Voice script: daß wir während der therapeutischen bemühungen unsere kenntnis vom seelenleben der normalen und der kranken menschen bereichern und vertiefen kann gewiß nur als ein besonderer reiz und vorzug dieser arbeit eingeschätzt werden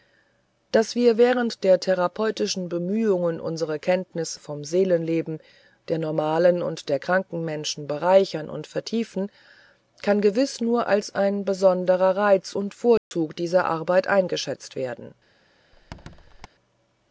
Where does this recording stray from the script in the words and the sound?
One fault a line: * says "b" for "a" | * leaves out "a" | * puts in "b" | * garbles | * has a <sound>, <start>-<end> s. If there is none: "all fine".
* has a dropout, 13.0-13.1 s
* has a squeak, 15.7-16.5 s